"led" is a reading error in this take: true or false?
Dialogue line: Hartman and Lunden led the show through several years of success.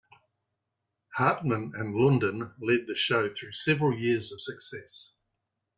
false